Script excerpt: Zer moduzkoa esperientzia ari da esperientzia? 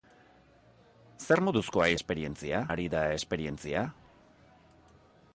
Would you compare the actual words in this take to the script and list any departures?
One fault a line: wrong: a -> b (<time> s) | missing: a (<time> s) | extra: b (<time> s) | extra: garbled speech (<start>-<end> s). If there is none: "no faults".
no faults